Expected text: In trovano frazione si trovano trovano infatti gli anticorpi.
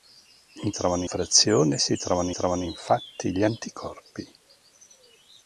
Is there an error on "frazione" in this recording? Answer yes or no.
no